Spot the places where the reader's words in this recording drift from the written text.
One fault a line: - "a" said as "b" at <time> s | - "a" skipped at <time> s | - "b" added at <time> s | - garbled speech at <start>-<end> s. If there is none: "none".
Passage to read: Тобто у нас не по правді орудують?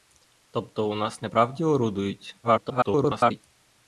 - "по" skipped at 1.3 s
- garbled speech at 2.4-3.4 s